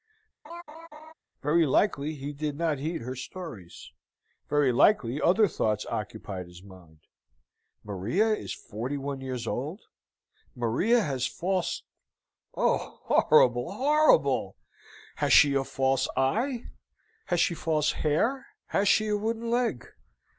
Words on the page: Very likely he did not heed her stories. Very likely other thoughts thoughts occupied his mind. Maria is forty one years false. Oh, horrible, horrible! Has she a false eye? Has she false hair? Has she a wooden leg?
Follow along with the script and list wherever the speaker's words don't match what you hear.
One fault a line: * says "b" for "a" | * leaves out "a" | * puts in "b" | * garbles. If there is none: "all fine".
* leaves out "thoughts"
* puts in "old Maria has"